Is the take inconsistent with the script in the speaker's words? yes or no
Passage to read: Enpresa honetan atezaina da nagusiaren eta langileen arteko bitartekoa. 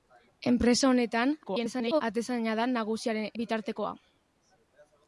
yes